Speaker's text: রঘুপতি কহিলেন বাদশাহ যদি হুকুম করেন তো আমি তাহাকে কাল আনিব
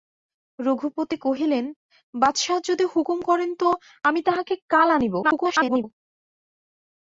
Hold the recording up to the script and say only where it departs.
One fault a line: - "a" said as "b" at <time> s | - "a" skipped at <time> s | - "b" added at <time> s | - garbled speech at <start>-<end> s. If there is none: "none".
- garbled speech at 5.2-5.8 s